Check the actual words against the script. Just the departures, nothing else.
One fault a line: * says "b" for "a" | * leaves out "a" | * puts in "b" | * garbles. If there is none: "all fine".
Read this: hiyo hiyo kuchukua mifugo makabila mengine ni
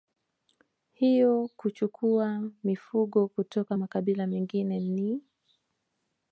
* leaves out "hiyo"
* puts in "kutoka"